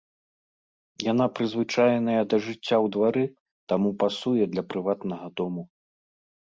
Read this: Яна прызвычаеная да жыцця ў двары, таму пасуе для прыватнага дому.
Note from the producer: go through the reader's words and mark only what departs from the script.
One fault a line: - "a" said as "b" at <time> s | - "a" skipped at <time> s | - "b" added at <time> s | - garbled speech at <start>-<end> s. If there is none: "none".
none